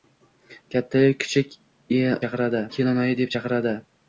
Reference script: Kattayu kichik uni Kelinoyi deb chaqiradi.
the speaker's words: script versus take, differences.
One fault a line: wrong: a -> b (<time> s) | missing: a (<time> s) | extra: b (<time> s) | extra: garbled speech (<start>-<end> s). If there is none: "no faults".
wrong: uni -> chaqiradi (2.2 s)